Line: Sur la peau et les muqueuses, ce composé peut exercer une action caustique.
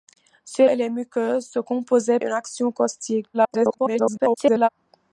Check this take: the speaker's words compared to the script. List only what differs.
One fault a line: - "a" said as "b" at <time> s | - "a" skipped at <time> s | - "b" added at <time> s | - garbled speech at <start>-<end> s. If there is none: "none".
- "la peau" skipped at 0.7 s
- "peut exercer" skipped at 2.2 s
- garbled speech at 3.3-4.7 s